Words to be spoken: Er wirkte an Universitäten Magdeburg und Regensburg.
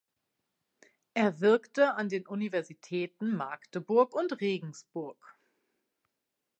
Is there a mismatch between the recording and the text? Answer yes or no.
yes